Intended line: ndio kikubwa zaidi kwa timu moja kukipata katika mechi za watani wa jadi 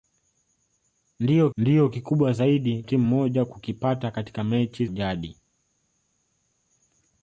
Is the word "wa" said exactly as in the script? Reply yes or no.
no